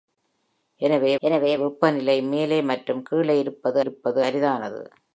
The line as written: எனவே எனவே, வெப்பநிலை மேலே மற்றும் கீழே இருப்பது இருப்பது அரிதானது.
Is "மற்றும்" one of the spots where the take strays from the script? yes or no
no